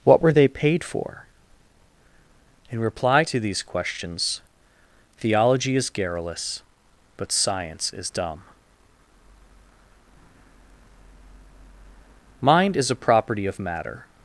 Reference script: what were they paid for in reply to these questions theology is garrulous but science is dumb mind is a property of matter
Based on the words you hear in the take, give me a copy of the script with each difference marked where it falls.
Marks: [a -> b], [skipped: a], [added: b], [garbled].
what were they paid for in reply to these questions theology is garrulous but science is dumb mind is a property of matter